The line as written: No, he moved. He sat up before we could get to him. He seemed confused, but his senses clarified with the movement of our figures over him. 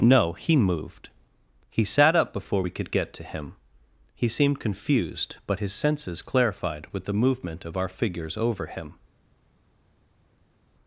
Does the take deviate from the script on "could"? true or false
false